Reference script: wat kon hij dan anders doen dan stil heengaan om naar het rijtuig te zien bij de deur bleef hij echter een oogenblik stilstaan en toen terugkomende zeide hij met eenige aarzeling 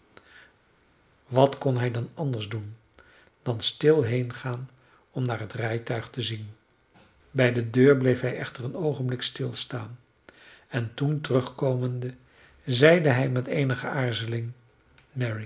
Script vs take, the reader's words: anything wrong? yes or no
no